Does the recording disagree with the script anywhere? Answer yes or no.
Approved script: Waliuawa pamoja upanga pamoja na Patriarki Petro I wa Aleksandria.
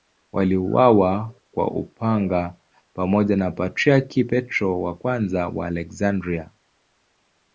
yes